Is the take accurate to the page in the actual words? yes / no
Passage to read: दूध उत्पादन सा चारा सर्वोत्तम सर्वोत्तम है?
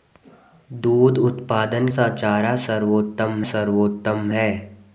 yes